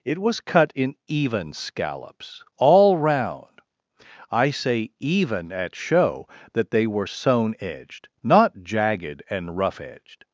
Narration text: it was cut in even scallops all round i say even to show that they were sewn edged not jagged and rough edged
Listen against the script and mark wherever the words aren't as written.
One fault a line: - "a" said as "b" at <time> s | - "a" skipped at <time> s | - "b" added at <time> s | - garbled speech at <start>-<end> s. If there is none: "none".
- "to" said as "at" at 5.5 s